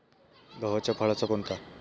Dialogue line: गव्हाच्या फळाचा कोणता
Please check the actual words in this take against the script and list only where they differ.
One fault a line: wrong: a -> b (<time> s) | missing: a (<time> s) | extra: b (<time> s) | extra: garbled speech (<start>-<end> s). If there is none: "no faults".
no faults